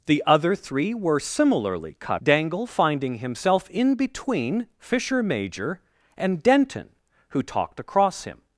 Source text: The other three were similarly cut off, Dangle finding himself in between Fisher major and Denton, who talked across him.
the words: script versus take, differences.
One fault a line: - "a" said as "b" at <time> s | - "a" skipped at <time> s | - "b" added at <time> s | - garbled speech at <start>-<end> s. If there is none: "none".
- "off" skipped at 2.2 s